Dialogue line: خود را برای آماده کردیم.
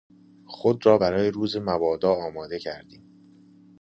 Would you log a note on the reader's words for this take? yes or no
yes